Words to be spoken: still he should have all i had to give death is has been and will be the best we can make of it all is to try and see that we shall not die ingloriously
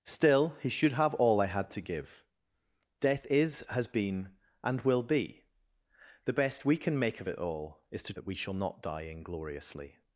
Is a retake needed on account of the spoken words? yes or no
yes